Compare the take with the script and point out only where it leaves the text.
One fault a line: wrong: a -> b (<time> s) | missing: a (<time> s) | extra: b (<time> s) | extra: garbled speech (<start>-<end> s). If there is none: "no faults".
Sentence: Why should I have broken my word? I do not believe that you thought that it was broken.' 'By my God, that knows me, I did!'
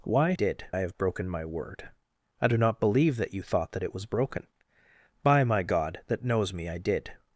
wrong: should -> did (0.3 s)